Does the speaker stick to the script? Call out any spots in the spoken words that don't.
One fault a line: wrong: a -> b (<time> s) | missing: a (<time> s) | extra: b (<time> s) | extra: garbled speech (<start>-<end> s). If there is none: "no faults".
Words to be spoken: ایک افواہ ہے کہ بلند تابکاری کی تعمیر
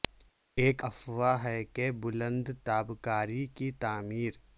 no faults